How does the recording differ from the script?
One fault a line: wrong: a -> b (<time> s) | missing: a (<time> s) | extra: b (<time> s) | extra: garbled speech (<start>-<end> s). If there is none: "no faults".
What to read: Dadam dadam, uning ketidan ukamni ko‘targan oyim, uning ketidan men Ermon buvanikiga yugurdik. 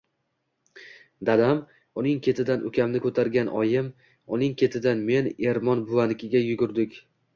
missing: dadam (1.6 s)